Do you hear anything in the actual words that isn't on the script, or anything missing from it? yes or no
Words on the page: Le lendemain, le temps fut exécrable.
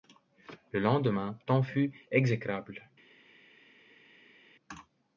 yes